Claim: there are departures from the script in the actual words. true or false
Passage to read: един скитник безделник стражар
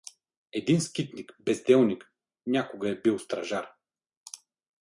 true